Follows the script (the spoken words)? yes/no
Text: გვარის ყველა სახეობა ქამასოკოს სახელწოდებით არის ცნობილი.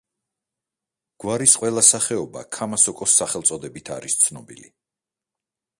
yes